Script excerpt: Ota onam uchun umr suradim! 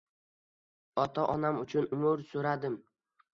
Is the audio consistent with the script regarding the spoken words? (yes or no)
yes